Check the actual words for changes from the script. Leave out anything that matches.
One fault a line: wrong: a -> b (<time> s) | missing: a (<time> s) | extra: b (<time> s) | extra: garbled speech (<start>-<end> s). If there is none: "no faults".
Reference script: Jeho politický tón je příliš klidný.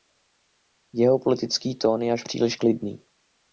extra: až (2.1 s)